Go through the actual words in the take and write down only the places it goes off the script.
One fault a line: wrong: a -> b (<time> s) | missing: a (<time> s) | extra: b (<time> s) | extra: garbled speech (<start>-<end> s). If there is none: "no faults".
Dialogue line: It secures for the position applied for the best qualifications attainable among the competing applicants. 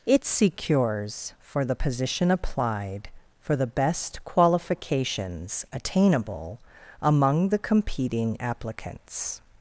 no faults